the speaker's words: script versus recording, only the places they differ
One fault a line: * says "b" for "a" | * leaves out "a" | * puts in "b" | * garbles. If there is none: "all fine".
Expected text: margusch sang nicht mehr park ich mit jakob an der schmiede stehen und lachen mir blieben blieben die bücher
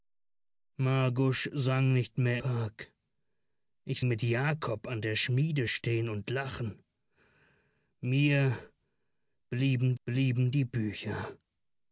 all fine